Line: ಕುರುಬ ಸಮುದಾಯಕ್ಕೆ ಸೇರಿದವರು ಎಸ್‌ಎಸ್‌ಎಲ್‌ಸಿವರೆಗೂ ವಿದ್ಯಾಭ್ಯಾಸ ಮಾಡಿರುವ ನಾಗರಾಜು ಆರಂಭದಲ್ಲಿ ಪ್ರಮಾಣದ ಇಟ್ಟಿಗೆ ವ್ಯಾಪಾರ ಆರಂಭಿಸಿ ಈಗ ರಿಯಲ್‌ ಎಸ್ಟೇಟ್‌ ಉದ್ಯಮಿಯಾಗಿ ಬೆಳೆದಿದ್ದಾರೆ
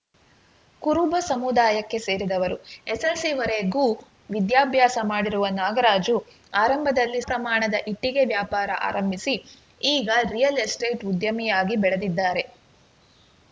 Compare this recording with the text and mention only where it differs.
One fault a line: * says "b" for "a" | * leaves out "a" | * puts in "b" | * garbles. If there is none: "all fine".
all fine